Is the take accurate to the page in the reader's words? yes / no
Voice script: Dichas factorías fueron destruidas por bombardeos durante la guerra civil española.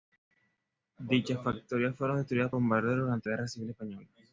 no